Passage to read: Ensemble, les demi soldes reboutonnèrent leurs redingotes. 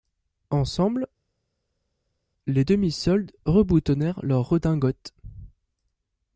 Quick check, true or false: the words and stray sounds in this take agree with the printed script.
true